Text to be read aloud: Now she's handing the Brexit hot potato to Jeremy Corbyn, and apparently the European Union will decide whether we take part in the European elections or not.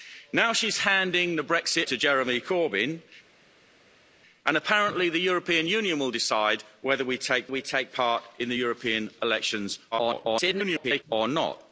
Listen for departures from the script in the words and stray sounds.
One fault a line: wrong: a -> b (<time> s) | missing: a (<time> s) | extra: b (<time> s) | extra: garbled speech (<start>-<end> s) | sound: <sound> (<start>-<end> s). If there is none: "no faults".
missing: hot potato (1.9 s)
extra: we take (7.5 s)
extra: garbled speech (9.9-11.0 s)